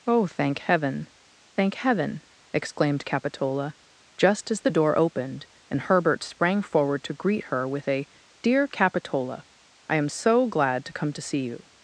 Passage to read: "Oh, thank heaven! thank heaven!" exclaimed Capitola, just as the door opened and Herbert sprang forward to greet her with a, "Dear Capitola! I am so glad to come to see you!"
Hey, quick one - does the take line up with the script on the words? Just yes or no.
yes